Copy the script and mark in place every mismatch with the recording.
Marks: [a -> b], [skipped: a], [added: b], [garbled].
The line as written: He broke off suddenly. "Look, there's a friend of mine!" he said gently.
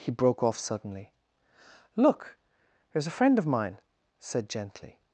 He broke off suddenly. "Look, there's a friend of mine!" [skipped: he] said gently.